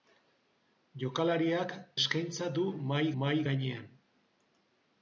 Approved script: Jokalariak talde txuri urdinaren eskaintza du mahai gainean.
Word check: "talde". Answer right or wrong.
wrong